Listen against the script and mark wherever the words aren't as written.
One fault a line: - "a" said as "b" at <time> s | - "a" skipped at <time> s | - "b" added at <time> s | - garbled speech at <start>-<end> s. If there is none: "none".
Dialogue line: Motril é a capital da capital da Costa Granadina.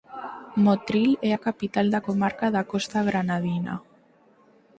- "capital" said as "comarca" at 2.1 s